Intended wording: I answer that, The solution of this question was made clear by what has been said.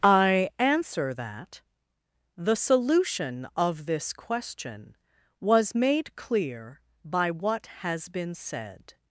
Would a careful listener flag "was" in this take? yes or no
no